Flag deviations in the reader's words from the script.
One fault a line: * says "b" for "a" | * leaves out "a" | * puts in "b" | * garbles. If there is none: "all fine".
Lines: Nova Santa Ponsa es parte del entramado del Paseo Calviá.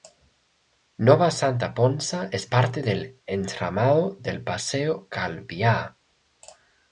all fine